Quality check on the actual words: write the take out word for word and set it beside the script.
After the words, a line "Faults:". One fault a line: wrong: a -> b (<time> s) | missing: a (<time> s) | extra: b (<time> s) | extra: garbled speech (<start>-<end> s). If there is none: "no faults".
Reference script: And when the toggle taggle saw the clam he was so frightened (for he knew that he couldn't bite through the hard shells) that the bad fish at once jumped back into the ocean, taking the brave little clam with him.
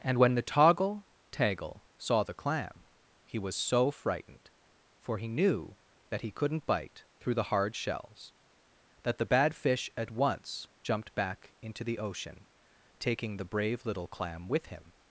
And when the toggle taggle saw the clam he was so frightened (for he knew that he couldn't bite through the hard shells) that the bad fish at once jumped back into the ocean, taking the brave little clam with him.
Faults:
no faults